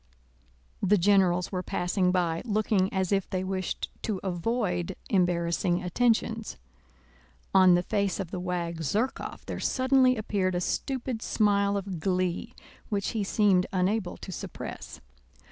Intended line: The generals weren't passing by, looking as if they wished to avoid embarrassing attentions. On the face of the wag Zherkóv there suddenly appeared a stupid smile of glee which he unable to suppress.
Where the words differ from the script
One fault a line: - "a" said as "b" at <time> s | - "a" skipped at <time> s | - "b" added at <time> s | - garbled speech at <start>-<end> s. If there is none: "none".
- "weren't" said as "were" at 1.5 s
- "seemed" added at 13.2 s